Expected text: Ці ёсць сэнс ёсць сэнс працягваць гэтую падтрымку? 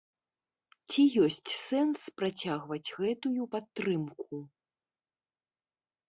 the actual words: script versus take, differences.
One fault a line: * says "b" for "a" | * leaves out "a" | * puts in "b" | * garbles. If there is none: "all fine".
* leaves out "ёсць сэнс"